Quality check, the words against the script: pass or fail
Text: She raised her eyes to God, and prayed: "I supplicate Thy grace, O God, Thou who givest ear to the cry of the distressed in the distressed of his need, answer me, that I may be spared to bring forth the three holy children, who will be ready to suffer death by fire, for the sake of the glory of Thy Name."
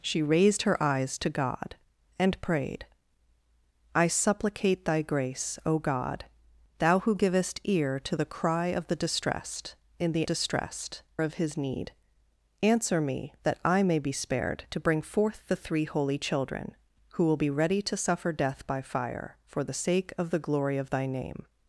pass